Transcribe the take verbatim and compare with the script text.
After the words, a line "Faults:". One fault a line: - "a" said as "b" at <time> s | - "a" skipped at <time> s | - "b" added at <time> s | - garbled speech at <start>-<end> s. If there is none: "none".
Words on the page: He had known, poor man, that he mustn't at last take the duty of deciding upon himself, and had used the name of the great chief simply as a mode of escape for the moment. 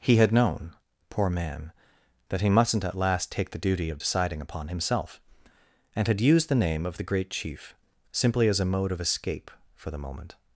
He had known, poor man, that he mustn't at last take the duty of deciding upon himself, and had used the name of the great chief simply as a mode of escape for the moment.
Faults:
none